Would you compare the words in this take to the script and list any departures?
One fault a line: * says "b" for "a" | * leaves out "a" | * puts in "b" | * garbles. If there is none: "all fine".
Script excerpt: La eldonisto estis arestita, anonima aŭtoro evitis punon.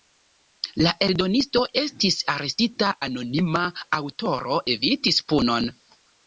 all fine